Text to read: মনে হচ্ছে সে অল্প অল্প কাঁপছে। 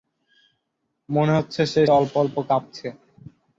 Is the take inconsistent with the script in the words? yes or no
no